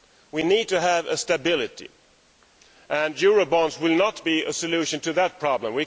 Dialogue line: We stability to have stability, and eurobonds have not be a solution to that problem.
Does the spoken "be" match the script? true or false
true